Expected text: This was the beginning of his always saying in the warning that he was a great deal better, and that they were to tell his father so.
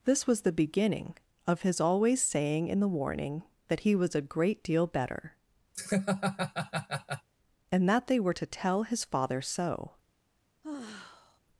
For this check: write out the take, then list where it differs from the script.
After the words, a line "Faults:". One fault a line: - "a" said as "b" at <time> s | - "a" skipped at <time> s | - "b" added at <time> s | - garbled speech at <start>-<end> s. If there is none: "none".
This was the beginning of his always saying in the warning that he was a great deal better, and that they were to tell his father so.
Faults:
none